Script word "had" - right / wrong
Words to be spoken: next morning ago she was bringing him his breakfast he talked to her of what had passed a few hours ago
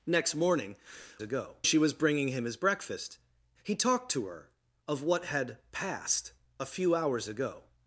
right